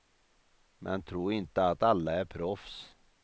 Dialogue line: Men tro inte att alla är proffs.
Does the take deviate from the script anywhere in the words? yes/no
no